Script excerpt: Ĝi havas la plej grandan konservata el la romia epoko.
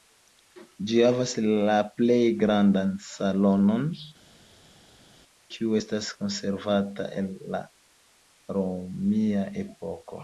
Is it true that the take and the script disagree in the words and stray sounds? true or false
true